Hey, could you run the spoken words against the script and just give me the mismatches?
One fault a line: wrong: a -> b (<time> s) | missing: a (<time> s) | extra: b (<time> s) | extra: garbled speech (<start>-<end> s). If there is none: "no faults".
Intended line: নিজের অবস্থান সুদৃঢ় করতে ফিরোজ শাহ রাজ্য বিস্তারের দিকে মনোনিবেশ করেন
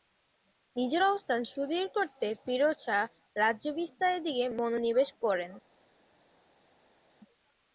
no faults